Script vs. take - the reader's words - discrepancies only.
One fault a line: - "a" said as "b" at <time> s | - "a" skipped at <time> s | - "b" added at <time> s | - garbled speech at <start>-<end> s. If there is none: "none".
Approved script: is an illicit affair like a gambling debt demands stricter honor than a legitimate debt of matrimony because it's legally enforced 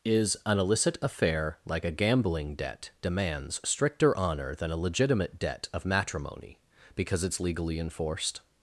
none